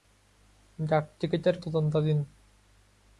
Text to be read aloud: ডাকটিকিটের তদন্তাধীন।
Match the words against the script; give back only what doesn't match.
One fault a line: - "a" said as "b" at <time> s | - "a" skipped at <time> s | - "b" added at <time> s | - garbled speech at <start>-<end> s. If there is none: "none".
none